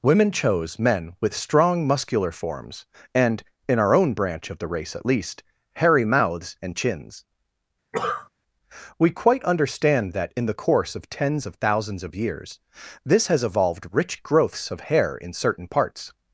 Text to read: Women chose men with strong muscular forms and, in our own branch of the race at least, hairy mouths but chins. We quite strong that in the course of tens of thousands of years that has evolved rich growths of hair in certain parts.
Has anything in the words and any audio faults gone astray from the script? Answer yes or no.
yes